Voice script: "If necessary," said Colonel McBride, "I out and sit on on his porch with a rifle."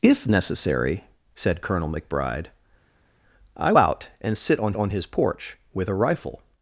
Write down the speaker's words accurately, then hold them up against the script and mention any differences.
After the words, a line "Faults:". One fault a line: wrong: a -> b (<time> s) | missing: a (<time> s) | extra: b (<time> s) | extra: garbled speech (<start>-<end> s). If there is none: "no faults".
"If necessary," said Colonel McBride, "I out and sit on on his porch with a rifle."
Faults:
no faults